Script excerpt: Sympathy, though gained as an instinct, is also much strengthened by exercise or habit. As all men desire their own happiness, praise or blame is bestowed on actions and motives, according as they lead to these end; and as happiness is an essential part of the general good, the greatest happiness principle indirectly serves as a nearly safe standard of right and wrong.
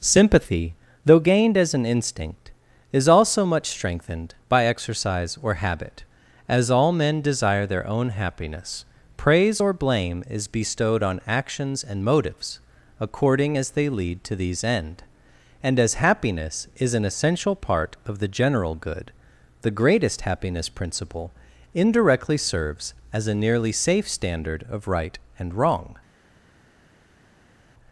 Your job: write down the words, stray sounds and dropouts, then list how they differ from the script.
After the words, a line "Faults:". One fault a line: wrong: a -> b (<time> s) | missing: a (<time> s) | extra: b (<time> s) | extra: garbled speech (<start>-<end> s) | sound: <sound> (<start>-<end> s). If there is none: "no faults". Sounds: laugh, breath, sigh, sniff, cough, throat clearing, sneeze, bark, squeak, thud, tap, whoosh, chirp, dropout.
Sympathy, though gained as an instinct, is also much strengthened by exercise or habit. As all men desire their own happiness, praise or blame is bestowed on actions and motives, according as they lead to these end; and as happiness is an essential part of the general good, the greatest happiness principle indirectly serves as a nearly safe standard of right and wrong.
Faults:
no faults